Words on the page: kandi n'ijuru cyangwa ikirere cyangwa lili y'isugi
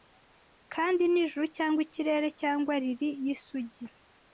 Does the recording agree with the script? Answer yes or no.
yes